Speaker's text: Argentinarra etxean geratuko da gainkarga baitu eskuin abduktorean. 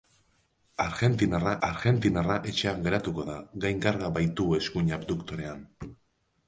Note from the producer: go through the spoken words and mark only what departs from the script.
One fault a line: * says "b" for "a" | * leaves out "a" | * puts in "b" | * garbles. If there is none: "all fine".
* puts in "argentinarra"